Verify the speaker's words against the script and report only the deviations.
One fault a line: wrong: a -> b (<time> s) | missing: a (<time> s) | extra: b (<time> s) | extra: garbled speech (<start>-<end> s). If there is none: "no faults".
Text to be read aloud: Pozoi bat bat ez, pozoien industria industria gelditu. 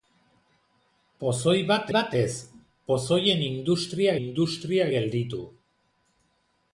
no faults